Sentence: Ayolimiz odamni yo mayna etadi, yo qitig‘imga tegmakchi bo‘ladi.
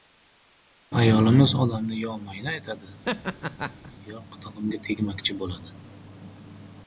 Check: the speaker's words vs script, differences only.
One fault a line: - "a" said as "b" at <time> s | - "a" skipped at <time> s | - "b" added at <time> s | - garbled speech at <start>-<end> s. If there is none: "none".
none